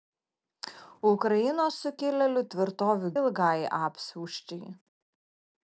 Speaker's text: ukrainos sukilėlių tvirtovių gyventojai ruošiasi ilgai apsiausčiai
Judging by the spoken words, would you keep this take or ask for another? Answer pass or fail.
fail